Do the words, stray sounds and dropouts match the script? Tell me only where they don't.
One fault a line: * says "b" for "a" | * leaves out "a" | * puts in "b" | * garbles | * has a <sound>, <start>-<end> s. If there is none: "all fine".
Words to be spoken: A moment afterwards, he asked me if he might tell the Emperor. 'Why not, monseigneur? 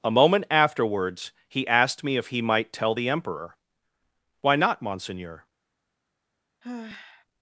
* has a sigh, 6.6-7.3 s